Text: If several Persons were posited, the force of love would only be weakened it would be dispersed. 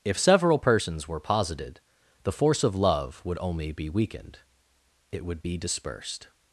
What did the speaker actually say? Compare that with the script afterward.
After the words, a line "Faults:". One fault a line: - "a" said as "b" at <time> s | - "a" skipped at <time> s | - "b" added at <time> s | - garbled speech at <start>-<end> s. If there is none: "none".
If several Persons were posited, the force of love would only be weakened it would be dispersed.
Faults:
none